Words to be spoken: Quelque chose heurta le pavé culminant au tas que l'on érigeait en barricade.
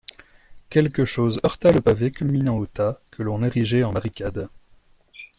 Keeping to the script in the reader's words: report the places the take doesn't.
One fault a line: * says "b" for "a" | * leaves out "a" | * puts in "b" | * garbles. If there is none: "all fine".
all fine